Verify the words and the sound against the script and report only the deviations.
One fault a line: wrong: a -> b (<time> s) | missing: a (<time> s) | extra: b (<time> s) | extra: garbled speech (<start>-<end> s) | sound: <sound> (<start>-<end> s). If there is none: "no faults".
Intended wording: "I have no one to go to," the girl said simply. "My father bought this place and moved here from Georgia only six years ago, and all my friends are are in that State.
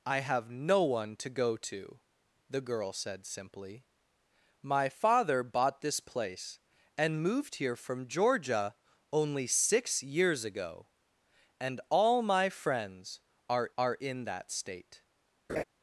sound: laugh (15.5-15.6 s)